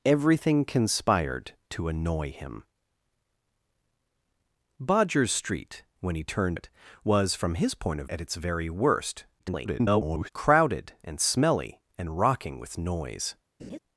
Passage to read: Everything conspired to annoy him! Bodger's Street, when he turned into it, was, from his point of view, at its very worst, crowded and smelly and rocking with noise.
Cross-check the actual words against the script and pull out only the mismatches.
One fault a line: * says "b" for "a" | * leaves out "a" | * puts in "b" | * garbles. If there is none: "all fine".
* leaves out "into"
* leaves out "view"
* garbles